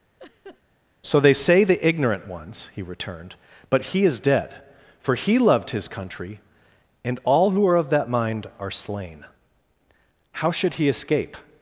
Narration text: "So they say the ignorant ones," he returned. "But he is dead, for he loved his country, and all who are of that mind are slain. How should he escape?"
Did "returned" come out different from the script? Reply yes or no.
no